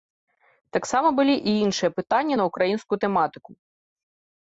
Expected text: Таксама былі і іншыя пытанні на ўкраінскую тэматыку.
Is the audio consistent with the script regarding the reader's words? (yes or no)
yes